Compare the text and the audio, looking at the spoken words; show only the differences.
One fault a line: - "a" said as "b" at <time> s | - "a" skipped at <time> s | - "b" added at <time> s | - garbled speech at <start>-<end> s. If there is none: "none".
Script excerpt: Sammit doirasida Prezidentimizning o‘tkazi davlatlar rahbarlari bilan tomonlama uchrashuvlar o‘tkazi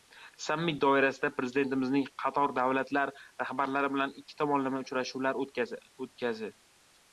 - "o‘tkazi" said as "qator" at 2.2 s
- "ikki" added at 4.2 s